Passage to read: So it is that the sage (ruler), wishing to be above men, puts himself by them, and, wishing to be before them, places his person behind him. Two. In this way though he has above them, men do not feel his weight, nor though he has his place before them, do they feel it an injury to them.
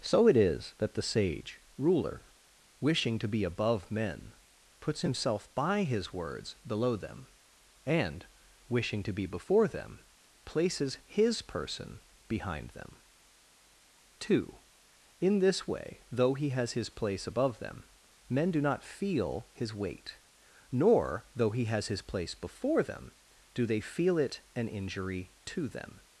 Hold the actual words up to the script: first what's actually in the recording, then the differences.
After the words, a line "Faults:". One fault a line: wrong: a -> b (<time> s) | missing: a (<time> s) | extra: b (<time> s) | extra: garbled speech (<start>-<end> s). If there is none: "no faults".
So it is that the sage (ruler), wishing to be above men, puts himself by his words below them, and, wishing to be before them, places his person behind them. Two. In this way though he has his place above them, men do not feel his weight, nor though he has his place before them, do they feel it an injury to them.
Faults:
extra: his words below (5.8 s)
wrong: him -> them (12.7 s)
extra: his place (16.7 s)